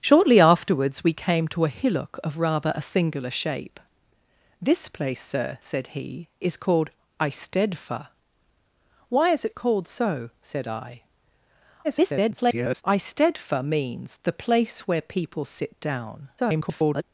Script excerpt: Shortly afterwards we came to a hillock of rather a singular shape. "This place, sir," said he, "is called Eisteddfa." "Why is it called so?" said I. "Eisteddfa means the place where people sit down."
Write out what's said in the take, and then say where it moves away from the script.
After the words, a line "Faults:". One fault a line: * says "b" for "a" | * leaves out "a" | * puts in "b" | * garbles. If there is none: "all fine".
Shortly afterwards we came to a hillock of rather a singular shape. "This place, sir," said he, "is called Eisteddfa." "Why is it called so?" said I. [garbled] "Eisteddfa means the place where people sit down." [garbled]
Faults:
* garbles
* garbles